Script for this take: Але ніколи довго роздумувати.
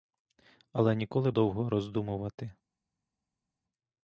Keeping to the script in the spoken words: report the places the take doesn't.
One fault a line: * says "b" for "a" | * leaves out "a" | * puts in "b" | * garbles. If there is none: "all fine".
all fine